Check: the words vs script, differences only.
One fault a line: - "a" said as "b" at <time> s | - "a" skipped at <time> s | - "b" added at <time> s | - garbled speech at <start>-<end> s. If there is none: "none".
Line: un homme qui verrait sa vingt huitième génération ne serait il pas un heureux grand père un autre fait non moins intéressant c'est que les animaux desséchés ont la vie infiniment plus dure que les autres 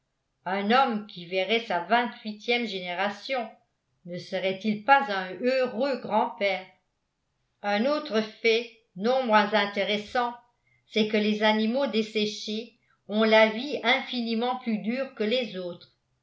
none